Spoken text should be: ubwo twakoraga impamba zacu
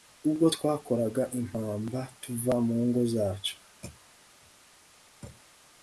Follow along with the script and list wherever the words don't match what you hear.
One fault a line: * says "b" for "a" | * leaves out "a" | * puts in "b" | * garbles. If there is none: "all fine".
* puts in "tuva mu ngo"